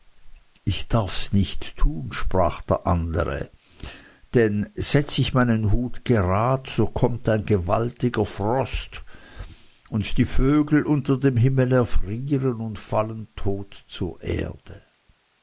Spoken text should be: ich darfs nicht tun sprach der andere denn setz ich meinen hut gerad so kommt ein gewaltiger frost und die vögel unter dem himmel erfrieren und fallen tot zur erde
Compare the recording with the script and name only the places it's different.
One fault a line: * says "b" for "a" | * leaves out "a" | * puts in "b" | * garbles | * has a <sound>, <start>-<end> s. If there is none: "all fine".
all fine